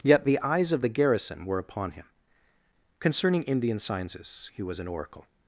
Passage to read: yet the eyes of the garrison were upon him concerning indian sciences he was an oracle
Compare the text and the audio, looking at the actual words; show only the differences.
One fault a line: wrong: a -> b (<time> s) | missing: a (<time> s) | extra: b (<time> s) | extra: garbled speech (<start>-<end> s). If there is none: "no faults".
no faults